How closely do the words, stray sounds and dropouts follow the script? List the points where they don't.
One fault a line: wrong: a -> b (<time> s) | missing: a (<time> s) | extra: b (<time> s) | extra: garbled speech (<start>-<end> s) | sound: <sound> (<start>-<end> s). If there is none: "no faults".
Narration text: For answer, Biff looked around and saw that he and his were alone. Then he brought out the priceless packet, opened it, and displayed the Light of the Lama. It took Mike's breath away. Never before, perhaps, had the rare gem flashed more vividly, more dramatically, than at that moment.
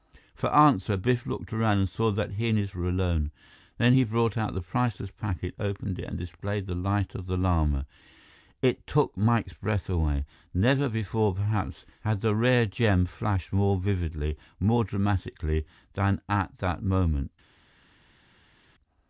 no faults